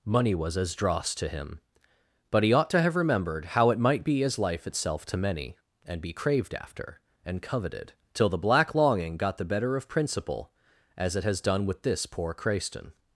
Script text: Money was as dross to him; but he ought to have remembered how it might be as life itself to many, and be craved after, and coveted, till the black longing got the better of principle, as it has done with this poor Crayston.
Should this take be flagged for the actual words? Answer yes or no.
no